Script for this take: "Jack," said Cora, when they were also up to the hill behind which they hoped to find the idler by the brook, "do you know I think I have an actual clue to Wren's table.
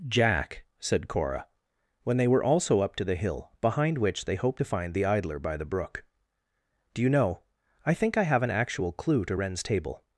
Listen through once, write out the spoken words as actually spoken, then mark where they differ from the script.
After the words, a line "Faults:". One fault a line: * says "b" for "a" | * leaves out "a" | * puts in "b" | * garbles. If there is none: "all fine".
"Jack," said Cora, when they were also up to the hill behind which they hoped to find the idler by the brook, "do you know I think I have an actual clue to Wren's table.
Faults:
all fine